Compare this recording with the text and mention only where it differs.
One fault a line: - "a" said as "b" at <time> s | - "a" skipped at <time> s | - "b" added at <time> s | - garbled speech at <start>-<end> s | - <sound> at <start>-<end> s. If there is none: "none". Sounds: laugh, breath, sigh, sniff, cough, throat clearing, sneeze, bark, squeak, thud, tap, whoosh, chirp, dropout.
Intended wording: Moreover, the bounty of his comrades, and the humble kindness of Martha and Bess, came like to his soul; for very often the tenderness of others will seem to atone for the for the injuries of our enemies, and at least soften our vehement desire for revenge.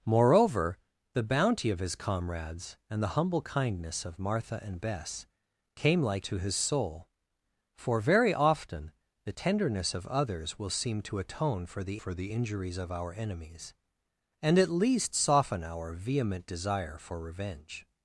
none